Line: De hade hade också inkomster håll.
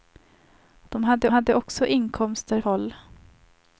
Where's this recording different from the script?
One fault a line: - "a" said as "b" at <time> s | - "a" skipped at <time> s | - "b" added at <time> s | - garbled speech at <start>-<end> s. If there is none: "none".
none